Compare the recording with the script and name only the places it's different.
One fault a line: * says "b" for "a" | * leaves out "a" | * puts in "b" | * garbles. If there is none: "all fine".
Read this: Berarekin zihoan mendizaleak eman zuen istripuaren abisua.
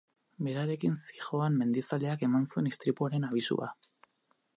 all fine